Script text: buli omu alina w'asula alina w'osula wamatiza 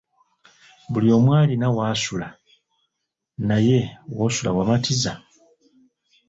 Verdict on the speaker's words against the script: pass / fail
fail